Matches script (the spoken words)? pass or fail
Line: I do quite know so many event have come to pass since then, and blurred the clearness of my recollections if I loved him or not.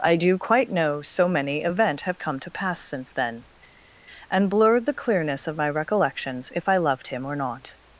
pass